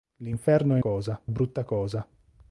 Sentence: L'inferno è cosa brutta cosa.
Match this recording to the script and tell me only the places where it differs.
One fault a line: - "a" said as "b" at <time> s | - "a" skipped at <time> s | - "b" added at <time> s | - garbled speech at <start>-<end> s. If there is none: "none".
none